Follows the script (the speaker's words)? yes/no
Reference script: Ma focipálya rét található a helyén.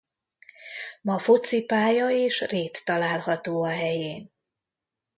no